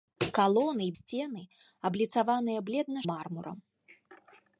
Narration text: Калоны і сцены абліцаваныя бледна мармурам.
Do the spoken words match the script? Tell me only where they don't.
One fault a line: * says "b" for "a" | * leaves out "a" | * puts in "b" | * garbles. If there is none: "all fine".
all fine